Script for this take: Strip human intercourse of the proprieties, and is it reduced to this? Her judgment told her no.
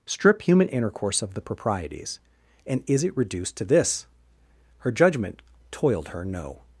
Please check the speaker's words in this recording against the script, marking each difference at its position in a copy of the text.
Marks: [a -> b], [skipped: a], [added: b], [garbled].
Strip human intercourse of the proprieties, and is it reduced to this? Her judgment [told -> toiled] her no.